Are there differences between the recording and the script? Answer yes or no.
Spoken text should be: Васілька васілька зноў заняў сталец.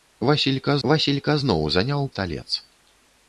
no